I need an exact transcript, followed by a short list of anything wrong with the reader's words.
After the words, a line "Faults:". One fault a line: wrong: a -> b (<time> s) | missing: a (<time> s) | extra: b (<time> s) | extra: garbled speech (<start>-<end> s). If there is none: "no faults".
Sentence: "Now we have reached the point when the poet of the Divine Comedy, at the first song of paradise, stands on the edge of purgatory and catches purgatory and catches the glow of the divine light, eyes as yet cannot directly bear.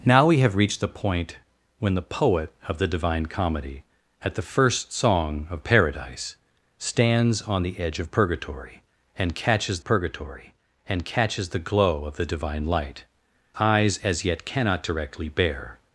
"Now we have reached the point when the poet of the Divine Comedy, at the first song of paradise, stands on the edge of purgatory and catches purgatory and catches the glow of the divine light, eyes as yet cannot directly bear.
Faults:
no faults